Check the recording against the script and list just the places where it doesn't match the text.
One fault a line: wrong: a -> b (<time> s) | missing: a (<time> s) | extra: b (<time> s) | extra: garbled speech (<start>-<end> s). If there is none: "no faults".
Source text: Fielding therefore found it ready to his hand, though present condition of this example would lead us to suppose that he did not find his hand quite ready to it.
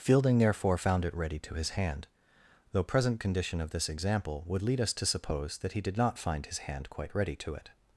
no faults